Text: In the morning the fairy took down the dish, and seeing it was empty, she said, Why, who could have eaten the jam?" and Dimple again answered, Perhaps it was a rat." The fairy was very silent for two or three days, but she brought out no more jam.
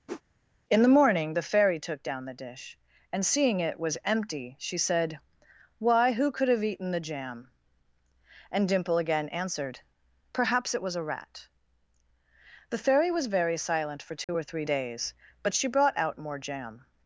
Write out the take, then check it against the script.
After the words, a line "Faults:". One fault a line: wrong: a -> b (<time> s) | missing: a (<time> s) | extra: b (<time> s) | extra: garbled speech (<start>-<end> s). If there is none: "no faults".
In the morning the fairy took down the dish, and seeing it was empty, she said, Why, who could have eaten the jam?" and Dimple again answered, Perhaps it was a rat." The fairy was very silent for two or three days, but she brought out more jam.
Faults:
missing: no (16.2 s)